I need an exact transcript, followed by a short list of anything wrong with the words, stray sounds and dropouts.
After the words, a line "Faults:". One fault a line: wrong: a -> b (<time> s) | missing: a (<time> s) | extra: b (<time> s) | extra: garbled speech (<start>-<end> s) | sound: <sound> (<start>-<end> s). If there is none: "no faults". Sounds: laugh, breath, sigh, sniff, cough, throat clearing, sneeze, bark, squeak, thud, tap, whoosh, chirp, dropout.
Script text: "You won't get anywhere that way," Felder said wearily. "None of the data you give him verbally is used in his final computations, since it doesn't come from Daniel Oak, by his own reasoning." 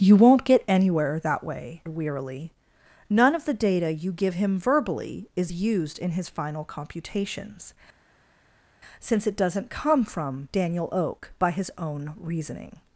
"You won't get anywhere that way," Wearily. "None of the data you give him verbally is used in his final computations, since it doesn't come from Daniel Oak, by his own reasoning."
Faults:
missing: Felder said (1.8 s)